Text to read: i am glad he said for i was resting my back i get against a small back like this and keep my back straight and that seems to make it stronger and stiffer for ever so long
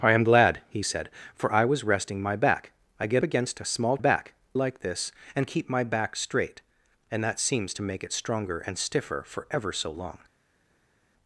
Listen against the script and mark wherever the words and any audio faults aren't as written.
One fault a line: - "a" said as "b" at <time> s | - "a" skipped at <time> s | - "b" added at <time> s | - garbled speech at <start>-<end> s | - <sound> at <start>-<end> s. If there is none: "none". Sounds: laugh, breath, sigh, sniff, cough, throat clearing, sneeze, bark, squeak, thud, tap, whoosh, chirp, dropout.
none